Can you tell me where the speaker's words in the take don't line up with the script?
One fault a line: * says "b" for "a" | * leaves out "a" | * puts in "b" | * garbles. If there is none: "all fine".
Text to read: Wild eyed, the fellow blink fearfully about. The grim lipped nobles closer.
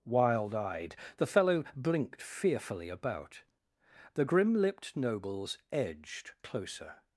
* says "blinked" for "blink"
* puts in "edged"